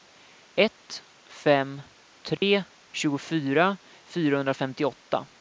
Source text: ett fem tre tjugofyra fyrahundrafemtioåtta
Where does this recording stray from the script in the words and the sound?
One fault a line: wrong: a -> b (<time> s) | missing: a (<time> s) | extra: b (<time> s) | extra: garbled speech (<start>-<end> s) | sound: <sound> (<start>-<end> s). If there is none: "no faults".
sound: dropout (2.4-2.4 s)